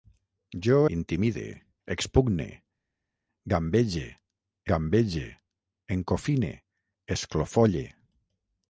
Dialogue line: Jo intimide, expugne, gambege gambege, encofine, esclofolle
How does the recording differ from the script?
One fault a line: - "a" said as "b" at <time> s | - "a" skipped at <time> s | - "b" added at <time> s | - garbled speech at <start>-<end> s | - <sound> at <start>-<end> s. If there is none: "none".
none